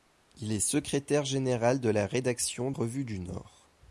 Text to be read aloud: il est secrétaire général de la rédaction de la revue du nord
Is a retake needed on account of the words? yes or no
yes